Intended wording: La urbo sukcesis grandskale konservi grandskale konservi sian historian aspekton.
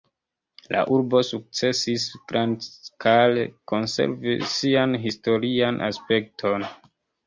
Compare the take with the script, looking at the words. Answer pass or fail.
fail